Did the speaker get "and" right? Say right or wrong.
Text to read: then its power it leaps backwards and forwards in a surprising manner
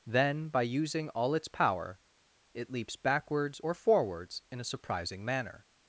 wrong